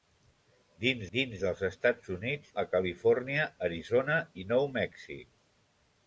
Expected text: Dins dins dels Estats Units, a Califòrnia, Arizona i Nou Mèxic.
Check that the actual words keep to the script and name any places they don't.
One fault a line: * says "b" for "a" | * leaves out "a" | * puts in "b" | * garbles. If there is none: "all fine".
all fine